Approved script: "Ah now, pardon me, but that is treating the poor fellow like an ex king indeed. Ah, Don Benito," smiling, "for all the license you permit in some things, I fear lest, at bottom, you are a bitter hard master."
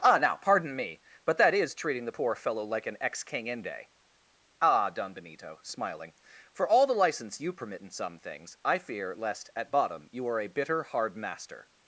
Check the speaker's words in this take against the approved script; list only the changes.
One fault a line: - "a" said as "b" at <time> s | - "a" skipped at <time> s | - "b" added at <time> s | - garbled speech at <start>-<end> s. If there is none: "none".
- "indeed" said as "inde" at 3.5 s